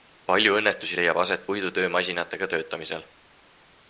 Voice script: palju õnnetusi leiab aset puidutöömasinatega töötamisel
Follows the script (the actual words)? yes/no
yes